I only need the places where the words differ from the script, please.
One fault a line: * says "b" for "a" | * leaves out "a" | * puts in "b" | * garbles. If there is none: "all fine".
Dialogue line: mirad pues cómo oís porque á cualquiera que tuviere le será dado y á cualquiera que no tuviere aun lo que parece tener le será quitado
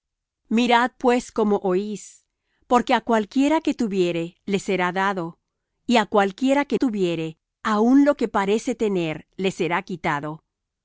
* leaves out "no"